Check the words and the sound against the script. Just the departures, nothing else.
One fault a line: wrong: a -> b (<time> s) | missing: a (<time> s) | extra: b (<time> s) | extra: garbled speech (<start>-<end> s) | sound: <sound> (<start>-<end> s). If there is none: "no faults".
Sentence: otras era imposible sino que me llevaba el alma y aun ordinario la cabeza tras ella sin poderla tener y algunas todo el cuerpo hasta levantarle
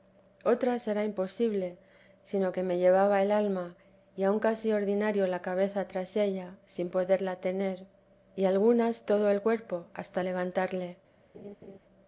extra: casi (4.4 s)
sound: laugh (11.3-11.8 s)